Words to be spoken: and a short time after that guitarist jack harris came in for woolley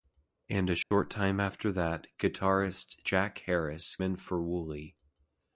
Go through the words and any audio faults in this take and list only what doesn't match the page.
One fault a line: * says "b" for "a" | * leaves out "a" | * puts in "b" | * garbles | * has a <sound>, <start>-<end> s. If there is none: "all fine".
* has a dropout, 0.8-0.9 s
* leaves out "came"